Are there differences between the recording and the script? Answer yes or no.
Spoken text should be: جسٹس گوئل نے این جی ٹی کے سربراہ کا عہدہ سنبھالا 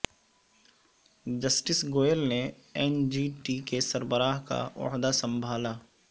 no